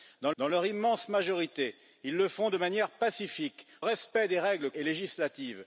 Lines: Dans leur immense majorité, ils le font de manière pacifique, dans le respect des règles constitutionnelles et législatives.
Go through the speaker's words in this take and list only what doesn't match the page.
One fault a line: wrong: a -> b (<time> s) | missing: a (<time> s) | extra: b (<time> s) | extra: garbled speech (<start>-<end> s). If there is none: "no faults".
extra: dans (0.4 s)
missing: dans le (3.7 s)
missing: constitutionnelles (4.7 s)